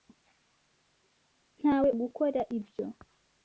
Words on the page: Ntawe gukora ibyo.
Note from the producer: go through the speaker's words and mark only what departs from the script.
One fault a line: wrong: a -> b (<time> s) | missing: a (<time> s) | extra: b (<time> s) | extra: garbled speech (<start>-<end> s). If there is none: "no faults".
no faults